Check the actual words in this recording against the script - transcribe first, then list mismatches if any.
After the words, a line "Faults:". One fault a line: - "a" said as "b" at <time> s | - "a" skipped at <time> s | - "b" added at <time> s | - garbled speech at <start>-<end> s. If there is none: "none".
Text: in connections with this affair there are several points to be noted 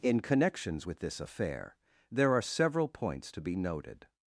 in connections with this affair there are several points to be noted
Faults:
none